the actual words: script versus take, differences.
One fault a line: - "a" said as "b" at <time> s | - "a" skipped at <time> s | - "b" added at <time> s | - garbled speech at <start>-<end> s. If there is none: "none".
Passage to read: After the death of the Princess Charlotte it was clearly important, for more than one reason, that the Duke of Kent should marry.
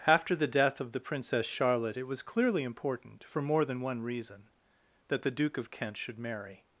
none